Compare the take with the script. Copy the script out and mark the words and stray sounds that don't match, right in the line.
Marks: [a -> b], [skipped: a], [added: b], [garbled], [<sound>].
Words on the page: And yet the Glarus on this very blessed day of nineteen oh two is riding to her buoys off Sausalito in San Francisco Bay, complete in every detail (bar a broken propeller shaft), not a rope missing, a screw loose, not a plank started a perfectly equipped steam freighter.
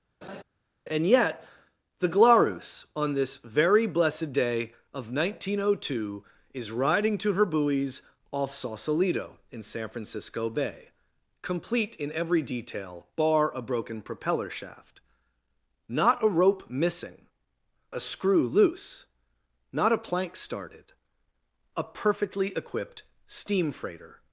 [laugh] And yet the Glarus on this very blessed day of nineteen oh two is riding to her buoys off Sausalito in San Francisco Bay, complete in every detail (bar a broken propeller shaft), not a rope missing, a screw loose, not a plank started a perfectly equipped steam freighter.